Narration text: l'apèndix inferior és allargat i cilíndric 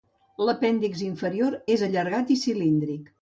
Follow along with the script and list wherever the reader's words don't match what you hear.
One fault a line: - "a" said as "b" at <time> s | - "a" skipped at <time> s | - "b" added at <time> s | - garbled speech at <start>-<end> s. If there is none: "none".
none